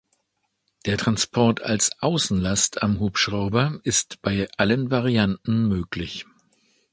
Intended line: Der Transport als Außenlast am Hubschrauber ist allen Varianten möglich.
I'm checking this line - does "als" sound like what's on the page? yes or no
yes